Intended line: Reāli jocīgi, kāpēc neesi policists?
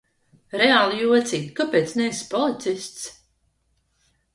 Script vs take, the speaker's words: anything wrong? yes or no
no